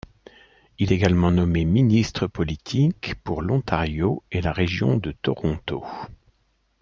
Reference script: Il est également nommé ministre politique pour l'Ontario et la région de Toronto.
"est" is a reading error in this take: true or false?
true